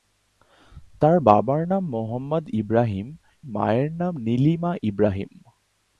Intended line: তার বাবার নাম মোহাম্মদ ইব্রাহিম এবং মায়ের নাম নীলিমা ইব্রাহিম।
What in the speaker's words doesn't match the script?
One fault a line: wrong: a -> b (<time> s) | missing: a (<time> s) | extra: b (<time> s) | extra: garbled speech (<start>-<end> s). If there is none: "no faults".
missing: এবং (3.1 s)